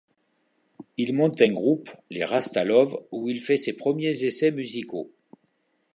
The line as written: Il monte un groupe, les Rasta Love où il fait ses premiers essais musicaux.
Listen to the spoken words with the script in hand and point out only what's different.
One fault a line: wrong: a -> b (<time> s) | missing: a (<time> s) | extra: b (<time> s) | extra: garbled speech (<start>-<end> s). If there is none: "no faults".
no faults